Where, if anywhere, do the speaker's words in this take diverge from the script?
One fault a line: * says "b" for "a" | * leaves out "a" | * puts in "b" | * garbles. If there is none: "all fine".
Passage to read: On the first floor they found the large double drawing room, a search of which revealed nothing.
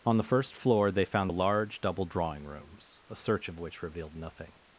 * says "rooms" for "room"